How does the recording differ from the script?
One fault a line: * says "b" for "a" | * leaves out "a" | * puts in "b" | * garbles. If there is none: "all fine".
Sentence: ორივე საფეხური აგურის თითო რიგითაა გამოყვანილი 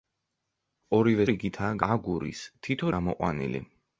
* says "რიგითაა" for "საფეხური"
* leaves out "რიგითაა"